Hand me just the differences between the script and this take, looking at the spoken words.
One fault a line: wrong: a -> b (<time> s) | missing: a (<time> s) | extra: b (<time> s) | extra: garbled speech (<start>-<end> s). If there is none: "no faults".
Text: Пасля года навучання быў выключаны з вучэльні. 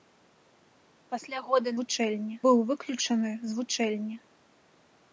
wrong: навучання -> вучэльні (1.8 s)